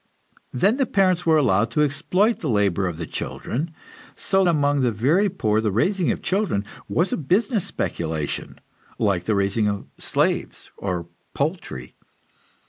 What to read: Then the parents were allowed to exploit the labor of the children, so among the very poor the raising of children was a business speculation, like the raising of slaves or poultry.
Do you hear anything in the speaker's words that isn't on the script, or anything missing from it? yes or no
no